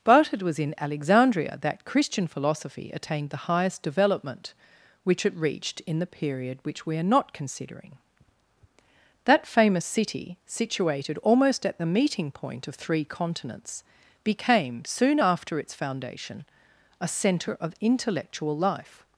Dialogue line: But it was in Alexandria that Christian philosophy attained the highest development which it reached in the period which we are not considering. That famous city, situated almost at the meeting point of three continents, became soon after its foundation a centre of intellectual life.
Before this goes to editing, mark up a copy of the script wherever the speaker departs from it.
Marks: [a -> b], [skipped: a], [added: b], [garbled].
But it was in Alexandria that Christian philosophy attained the highest development which it reached in the period which we are not considering. That famous city, situated almost at the meeting point of three continents, became soon after its foundation a centre of intellectual life.